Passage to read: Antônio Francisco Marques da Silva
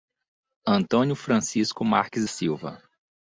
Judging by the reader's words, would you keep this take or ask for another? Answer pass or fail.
fail